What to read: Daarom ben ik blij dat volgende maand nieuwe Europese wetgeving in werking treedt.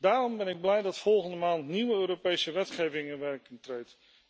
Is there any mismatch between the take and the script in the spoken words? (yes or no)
no